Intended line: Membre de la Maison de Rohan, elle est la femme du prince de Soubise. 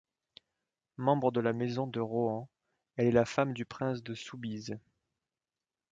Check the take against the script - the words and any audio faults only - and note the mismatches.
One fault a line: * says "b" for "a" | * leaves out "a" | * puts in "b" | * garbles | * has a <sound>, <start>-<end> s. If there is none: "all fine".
all fine